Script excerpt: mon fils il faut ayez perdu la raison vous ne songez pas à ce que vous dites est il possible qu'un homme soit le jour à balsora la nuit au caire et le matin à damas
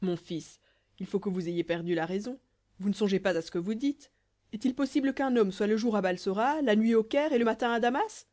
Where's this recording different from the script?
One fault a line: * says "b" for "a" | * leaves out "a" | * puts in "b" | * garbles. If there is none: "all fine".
* puts in "que vous"